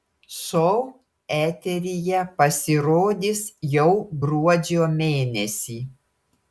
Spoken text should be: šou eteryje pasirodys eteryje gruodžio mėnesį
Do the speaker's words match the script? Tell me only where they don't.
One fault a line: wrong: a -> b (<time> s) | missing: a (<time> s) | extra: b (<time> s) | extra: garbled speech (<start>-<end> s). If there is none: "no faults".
wrong: eteryje -> jau (3.8 s)